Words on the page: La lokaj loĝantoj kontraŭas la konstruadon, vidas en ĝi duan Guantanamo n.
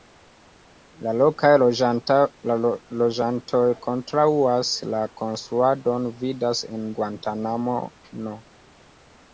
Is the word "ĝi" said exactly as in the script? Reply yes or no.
no